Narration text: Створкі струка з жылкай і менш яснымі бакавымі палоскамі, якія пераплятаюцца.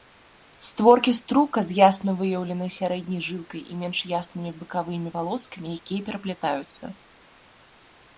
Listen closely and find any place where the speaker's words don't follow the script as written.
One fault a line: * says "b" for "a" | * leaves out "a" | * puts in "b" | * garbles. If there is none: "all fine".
* puts in "ясна выяўленай сярэдняй"